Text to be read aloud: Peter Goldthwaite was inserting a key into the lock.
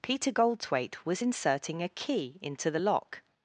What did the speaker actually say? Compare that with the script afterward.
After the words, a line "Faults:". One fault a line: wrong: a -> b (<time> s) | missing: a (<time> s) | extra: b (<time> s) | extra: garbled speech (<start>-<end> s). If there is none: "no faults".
Peter Goldthwaite was inserting a key into the lock.
Faults:
no faults